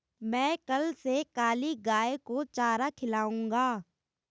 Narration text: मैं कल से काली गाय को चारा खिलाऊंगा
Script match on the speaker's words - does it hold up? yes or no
yes